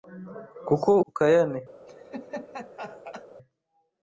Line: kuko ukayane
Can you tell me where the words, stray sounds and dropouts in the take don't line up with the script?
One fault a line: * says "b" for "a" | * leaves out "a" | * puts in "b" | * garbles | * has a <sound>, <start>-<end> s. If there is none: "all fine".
* has a laugh, 1.9-3.3 s